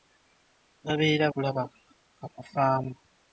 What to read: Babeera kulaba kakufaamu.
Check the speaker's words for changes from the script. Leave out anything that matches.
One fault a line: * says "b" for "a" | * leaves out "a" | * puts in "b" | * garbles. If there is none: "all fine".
all fine